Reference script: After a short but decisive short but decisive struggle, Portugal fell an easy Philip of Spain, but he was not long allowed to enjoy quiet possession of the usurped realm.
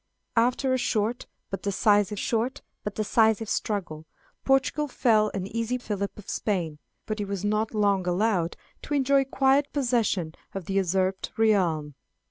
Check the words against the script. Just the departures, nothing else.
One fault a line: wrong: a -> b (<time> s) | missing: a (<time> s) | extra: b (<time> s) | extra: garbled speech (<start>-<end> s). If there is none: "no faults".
no faults